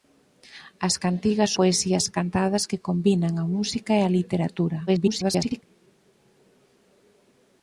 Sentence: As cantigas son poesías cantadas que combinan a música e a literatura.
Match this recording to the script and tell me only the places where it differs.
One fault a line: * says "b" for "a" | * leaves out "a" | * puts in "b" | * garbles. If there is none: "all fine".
* leaves out "son"
* garbles